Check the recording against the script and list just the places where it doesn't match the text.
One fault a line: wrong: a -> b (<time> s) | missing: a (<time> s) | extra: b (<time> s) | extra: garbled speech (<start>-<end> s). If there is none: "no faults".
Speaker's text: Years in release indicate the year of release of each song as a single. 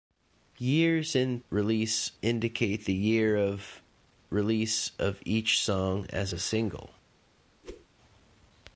no faults